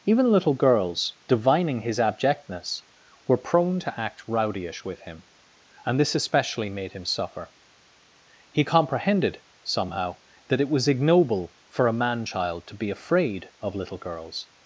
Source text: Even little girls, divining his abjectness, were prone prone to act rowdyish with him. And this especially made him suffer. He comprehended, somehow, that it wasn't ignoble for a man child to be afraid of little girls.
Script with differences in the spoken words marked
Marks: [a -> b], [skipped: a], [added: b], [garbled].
Even little girls, divining his abjectness, were prone [skipped: prone] to act rowdyish with him. And this especially made him suffer. He comprehended, somehow, that it [wasn't -> was] ignoble for a man child to be afraid of little girls.